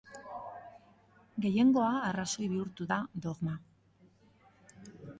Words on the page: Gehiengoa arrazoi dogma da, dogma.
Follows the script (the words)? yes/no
no